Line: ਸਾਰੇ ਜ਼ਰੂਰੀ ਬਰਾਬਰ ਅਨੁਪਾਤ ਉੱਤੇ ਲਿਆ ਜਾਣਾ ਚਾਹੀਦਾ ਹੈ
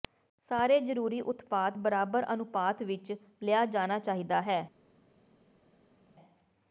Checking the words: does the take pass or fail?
fail